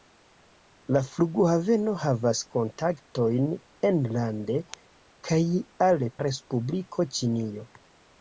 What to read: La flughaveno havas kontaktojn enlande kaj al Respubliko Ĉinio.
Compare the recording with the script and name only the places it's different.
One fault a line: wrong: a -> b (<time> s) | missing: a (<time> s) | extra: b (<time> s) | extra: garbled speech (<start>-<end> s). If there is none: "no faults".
no faults